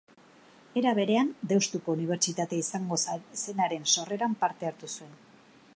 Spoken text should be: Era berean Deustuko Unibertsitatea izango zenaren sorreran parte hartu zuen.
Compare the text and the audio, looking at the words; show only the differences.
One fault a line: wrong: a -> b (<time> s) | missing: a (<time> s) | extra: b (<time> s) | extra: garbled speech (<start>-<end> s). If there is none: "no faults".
no faults